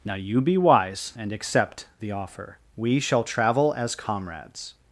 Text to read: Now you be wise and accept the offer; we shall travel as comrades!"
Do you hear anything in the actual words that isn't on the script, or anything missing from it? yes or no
no